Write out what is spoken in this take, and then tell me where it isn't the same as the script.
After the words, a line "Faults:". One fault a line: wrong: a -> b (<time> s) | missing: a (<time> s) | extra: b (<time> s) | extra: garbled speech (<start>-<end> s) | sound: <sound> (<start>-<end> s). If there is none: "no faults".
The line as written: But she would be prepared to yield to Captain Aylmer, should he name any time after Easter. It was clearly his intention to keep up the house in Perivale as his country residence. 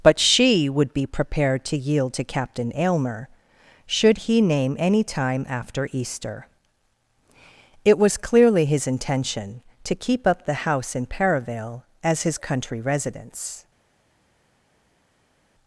But she would be prepared to yield to Captain Aylmer, should he name any time after Easter. It was clearly his intention to keep up the house in Perivale as his country residence.
Faults:
no faults